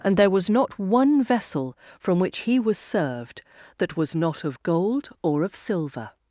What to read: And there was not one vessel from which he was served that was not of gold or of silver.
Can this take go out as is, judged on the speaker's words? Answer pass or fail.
pass